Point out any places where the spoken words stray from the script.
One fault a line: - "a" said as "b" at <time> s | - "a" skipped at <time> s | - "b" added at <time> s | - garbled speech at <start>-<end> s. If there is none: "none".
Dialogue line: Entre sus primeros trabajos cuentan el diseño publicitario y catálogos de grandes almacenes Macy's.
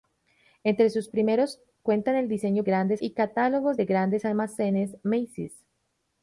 - "trabajos" skipped at 1.6 s
- "publicitario" said as "grandes" at 2.6 s